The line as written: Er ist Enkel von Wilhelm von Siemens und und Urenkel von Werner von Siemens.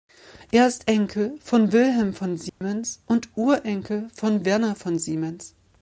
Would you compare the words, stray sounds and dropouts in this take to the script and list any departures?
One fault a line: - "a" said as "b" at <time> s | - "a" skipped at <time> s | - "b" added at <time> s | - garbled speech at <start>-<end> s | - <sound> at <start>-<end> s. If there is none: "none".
- dropout at 2.5-2.6 s
- "und" skipped at 3.3 s